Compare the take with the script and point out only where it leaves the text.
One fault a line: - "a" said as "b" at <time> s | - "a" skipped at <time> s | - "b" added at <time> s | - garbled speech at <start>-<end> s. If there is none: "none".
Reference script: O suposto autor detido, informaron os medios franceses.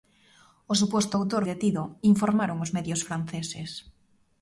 none